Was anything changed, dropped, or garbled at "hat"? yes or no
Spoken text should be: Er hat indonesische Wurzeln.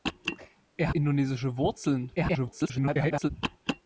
yes